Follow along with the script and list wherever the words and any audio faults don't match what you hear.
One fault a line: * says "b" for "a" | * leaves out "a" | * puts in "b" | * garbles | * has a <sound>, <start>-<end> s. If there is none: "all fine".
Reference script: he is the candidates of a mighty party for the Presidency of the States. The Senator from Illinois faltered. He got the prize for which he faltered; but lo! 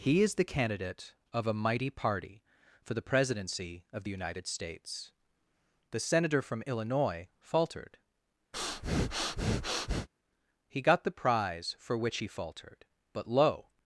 * says "candidate" for "candidates"
* puts in "United"
* has a breath, 8.5-10.1 s